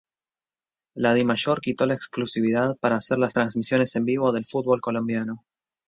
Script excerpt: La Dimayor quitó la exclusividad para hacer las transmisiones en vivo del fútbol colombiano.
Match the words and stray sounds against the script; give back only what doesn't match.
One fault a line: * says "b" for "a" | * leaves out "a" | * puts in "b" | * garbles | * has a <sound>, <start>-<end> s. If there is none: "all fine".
all fine